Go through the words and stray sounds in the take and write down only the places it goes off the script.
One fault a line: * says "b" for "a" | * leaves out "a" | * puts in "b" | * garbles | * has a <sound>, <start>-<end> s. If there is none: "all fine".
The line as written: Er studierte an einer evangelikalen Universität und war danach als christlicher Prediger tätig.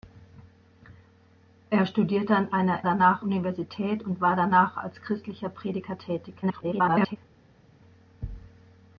* says "danach" for "evangelikalen"
* garbles